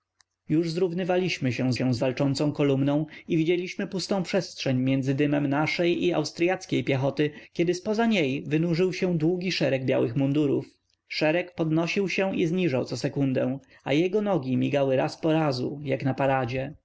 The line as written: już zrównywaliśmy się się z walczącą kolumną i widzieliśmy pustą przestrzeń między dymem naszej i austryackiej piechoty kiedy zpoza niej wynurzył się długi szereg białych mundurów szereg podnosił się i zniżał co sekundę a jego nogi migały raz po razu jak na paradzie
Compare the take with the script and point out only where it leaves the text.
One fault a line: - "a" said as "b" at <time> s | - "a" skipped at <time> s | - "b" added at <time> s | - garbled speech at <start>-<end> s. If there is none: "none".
none